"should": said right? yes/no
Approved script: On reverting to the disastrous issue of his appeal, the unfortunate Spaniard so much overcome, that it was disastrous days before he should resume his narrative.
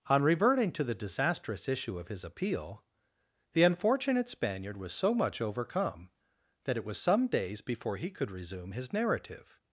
no